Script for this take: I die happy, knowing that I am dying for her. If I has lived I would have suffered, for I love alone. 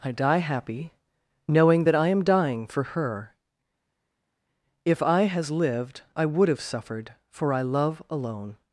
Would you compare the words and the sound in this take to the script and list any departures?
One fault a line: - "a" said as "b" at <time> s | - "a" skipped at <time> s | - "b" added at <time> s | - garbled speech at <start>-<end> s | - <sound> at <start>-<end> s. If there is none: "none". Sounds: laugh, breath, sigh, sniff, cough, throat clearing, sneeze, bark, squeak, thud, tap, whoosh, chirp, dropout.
none